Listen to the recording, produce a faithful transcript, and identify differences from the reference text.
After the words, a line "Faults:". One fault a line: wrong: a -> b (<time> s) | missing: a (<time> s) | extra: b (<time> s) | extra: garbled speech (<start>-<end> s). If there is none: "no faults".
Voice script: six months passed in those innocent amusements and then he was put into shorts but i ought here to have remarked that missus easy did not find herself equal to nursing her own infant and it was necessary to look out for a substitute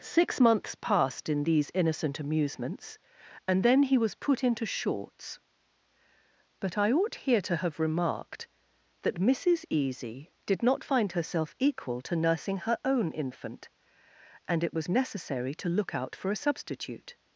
six months passed in these innocent amusements and then he was put into shorts but i ought here to have remarked that missus easy did not find herself equal to nursing her own infant and it was necessary to look out for a substitute
Faults:
wrong: those -> these (1.4 s)